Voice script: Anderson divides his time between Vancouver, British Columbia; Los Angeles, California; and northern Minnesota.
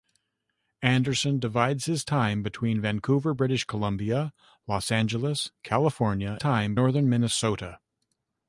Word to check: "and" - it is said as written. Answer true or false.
false